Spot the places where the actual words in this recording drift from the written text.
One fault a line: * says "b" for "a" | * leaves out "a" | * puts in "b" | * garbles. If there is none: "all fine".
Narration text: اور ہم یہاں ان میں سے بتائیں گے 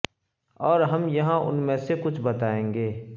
* puts in "کچھ"